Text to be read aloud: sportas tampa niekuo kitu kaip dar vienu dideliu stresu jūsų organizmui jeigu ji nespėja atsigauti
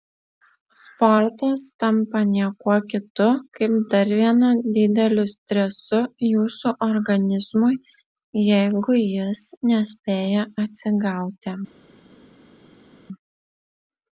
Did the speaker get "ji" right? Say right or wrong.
wrong